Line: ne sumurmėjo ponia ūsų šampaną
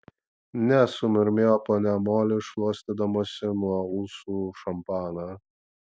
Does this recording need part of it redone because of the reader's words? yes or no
yes